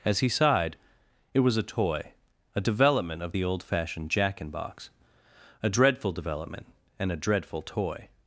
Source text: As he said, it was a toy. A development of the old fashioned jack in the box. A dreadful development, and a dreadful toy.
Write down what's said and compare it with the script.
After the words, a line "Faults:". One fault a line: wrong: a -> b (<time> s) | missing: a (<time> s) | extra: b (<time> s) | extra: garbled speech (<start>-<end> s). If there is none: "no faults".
As he sighed, it was a toy. A development of the old fashioned jack in box. A dreadful development, and a dreadful toy.
Faults:
wrong: said -> sighed (0.3 s)
missing: the (4.5 s)